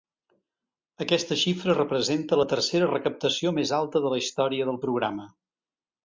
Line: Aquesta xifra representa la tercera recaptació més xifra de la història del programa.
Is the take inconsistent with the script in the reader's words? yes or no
yes